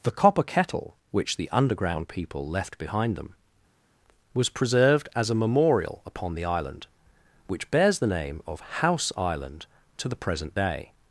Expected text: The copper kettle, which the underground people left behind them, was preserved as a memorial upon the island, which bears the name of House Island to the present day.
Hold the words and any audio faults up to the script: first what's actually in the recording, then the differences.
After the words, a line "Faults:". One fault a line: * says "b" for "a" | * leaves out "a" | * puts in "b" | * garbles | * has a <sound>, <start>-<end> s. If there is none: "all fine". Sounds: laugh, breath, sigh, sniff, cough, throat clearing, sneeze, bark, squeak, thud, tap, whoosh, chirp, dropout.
The copper kettle, which the underground people left behind them, was preserved as a memorial upon the island, which bears the name of House Island to the present day.
Faults:
all fine